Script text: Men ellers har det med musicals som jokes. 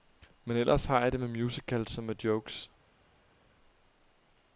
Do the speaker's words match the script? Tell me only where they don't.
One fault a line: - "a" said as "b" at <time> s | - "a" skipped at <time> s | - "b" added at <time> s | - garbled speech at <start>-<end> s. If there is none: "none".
- "jeg" added at 1.0 s
- "med" added at 2.0 s